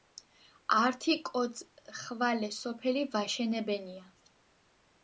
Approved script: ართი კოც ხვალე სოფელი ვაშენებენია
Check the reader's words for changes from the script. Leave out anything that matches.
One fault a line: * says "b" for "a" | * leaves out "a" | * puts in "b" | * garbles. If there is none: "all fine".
all fine